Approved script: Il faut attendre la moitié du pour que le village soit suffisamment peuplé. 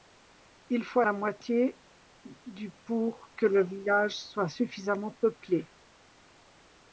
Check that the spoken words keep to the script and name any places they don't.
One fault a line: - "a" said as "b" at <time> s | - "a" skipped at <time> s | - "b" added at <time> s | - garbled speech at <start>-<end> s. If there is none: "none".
- "attendre" skipped at 1.0 s